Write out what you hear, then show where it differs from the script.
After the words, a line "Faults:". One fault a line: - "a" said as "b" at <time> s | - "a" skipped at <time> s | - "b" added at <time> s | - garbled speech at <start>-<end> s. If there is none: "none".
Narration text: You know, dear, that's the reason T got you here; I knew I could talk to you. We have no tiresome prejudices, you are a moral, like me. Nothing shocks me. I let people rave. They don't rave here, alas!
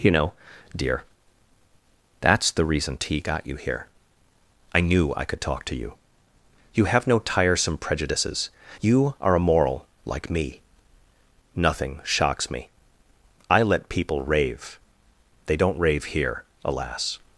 You know, dear, that's the reason T got you here; I knew I could talk to you. You have no tiresome prejudices, you are a moral, like me. Nothing shocks me. I let people rave. They don't rave here, alas!
Faults:
- "We" said as "You" at 6.7 s